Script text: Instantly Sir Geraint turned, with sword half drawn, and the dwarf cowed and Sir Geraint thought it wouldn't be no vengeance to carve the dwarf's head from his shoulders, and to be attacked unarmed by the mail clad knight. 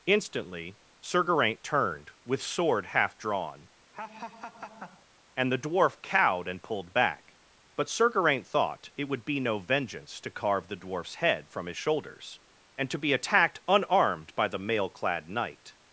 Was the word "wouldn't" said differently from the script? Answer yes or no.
yes